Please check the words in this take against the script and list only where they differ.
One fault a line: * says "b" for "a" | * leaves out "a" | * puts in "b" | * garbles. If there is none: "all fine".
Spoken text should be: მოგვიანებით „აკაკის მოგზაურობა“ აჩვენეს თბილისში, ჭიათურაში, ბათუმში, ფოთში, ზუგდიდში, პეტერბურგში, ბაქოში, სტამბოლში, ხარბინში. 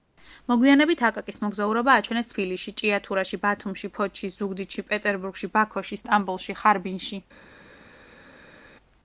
all fine